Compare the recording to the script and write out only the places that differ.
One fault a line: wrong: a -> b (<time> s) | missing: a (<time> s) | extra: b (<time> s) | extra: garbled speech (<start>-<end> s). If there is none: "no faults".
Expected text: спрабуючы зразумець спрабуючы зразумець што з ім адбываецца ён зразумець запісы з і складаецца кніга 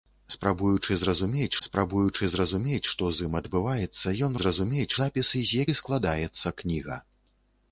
no faults